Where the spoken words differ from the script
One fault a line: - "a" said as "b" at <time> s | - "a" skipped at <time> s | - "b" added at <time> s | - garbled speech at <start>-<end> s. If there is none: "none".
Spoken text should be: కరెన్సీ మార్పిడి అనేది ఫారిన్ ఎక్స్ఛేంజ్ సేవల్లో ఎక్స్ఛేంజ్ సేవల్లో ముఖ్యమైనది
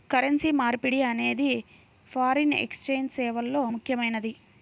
- "ఎక్స్ఛేంజ్ సేవల్లో" skipped at 3.7 s